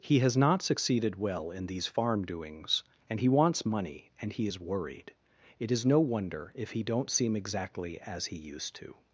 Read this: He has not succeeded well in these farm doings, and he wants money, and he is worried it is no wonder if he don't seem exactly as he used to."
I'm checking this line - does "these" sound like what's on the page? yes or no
yes